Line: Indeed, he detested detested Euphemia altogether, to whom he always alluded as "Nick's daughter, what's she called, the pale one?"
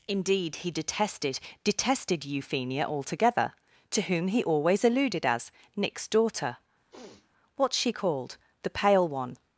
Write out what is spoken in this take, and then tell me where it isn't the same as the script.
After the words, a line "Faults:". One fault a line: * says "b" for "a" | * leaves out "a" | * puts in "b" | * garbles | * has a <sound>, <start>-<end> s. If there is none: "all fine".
Indeed, he detested detested Euphemia altogether, to whom he always alluded as "Nick's daughter, what's she called, the pale one?"
Faults:
* has a sniff, 6.9-7.3 s